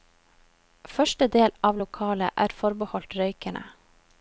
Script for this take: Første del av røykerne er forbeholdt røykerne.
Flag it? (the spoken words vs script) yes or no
yes